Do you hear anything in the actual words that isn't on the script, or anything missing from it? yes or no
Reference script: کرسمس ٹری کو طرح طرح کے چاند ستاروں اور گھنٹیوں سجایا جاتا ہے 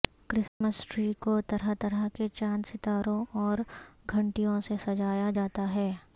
yes